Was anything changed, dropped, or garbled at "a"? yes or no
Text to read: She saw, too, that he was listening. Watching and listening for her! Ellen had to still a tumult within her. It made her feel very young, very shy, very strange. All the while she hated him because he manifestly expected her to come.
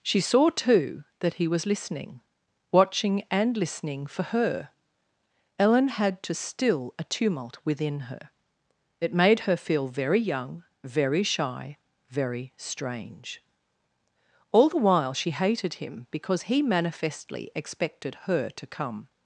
no